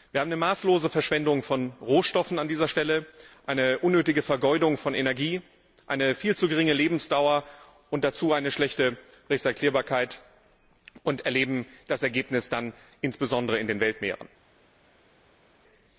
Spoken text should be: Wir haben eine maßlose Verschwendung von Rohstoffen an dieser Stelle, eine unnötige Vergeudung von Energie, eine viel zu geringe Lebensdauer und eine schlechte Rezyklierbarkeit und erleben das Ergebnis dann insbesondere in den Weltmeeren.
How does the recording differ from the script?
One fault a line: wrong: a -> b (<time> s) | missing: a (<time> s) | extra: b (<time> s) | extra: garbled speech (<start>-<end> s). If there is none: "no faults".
extra: dazu (8.0 s)